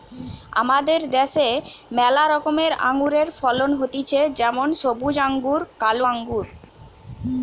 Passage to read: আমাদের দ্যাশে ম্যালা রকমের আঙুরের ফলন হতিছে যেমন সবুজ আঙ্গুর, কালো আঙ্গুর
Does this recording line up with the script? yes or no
yes